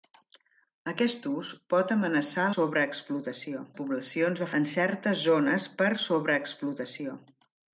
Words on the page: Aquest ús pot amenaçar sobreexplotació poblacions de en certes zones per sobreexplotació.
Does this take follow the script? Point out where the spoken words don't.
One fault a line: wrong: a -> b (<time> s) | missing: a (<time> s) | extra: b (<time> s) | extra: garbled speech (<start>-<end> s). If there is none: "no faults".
no faults